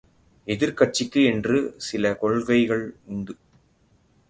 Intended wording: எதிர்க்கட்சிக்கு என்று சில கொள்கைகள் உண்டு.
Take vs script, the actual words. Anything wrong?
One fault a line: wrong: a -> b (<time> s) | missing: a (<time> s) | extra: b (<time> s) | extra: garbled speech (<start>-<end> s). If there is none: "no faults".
no faults